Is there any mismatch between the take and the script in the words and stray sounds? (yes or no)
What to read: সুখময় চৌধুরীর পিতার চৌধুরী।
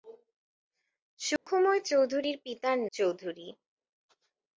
yes